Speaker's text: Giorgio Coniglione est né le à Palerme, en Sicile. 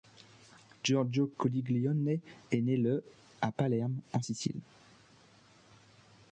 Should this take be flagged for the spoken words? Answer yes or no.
no